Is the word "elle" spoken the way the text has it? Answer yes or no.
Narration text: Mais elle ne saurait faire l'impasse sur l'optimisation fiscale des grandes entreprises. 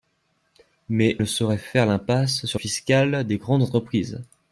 no